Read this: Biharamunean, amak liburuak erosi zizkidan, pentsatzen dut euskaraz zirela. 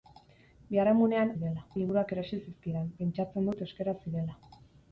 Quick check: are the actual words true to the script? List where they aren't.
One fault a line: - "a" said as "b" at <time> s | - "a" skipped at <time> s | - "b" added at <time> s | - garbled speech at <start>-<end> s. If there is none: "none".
- "amak" said as "zirela" at 1.3 s